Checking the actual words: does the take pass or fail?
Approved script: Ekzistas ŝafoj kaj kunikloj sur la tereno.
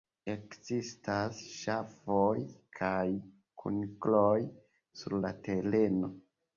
pass